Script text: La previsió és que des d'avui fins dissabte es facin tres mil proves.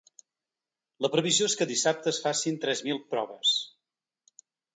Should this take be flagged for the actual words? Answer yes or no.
yes